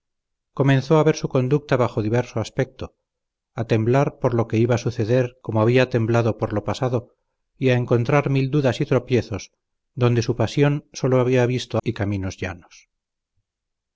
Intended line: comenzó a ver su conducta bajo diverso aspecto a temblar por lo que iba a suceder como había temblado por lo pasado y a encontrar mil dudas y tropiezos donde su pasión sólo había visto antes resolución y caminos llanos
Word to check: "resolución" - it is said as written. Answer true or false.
false